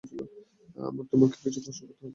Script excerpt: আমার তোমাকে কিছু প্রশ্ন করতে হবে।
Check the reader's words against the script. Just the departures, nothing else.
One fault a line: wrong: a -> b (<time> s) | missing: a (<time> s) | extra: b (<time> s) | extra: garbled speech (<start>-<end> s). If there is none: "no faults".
no faults